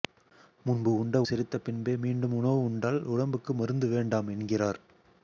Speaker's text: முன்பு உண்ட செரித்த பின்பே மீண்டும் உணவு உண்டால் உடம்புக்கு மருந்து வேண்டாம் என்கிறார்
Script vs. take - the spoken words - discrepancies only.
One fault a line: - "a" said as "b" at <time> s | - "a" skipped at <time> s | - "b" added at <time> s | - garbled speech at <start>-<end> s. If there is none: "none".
none